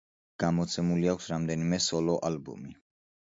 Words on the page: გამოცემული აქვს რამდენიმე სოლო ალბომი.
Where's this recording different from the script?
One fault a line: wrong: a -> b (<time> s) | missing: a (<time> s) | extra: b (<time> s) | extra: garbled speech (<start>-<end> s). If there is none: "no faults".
no faults